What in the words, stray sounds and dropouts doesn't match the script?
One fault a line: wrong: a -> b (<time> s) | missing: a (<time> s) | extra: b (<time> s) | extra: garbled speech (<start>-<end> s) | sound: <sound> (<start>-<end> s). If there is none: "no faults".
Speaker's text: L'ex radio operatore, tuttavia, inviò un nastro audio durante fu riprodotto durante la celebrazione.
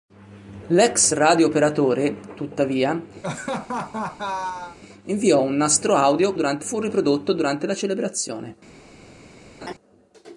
sound: laugh (3.2-4.8 s)
sound: laugh (9.6-9.7 s)